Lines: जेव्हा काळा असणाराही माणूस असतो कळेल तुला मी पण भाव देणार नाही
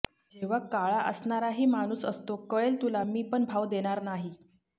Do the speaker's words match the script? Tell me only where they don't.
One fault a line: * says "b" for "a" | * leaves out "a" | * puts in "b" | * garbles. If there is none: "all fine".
all fine